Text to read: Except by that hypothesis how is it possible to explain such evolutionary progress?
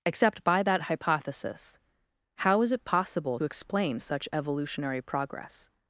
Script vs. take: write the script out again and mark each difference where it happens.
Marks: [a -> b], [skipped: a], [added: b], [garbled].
Except by that hypothesis how is it possible [skipped: to] explain such evolutionary progress?